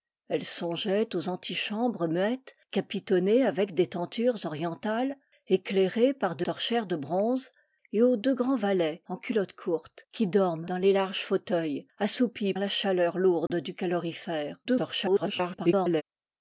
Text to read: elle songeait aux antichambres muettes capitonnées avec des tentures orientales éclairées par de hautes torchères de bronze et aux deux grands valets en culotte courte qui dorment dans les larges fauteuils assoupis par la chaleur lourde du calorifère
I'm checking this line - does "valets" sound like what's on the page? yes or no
yes